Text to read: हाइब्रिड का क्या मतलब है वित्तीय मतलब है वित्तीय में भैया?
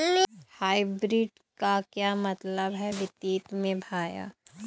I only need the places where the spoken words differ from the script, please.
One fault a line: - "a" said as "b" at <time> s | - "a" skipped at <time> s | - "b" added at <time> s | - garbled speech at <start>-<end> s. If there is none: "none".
- "मतलब है वित्तीय" skipped at 3.4 s